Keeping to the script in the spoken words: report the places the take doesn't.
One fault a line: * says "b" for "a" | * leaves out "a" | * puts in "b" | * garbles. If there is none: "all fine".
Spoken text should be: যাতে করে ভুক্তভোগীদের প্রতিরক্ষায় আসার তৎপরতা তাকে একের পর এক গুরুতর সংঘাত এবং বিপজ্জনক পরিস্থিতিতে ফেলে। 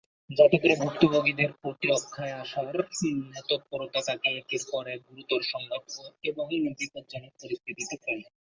all fine